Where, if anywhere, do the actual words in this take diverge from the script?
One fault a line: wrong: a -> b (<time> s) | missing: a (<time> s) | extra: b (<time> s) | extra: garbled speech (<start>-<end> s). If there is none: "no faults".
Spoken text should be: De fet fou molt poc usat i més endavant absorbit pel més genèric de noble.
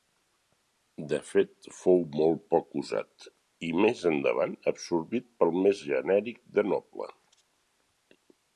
no faults